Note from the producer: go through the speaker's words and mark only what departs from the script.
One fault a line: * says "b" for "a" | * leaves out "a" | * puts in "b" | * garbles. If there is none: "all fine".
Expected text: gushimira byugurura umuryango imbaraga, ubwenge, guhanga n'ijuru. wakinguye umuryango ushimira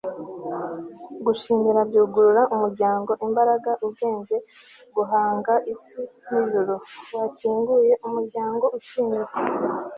* puts in "isi"